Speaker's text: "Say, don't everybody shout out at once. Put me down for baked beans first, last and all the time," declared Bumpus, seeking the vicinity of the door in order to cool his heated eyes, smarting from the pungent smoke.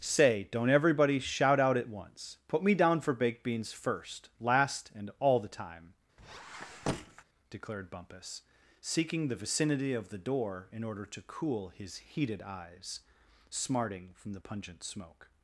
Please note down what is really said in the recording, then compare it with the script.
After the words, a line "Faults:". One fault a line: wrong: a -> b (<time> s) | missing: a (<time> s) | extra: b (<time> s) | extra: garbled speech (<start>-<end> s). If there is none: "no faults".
"Say, don't everybody shout out at once. Put me down for baked beans first, last and all the time," declared Bumpus, seeking the vicinity of the door in order to cool his heated eyes, smarting from the pungent smoke.
Faults:
no faults